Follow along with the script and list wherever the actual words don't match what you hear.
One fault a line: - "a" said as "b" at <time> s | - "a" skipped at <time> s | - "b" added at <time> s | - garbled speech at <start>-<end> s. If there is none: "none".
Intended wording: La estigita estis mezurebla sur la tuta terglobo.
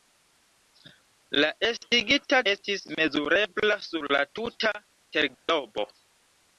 none